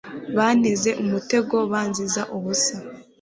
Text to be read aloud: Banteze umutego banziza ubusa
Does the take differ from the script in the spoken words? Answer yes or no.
no